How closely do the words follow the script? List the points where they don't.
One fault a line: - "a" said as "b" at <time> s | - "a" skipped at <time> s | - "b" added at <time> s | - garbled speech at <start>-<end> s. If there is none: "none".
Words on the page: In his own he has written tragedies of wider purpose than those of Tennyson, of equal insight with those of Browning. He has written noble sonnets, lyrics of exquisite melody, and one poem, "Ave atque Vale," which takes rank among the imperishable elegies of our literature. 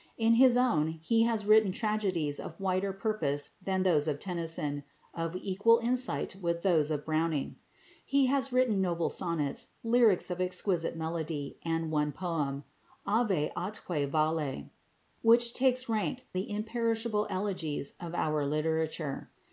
- "among" skipped at 16.3 s